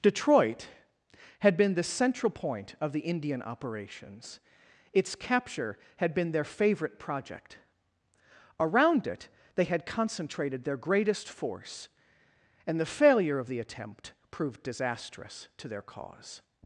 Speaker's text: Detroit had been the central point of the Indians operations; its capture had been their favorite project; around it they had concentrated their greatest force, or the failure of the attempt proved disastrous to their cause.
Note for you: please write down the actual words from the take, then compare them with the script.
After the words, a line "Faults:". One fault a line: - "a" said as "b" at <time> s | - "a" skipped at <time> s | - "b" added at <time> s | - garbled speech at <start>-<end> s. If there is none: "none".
Detroit had been the central point of the Indian operations; its capture had been their favorite project; around it they had concentrated their greatest force, and the failure of the attempt proved disastrous to their cause.
Faults:
- "Indians" said as "Indian" at 3.0 s
- "or" said as "and" at 12.7 s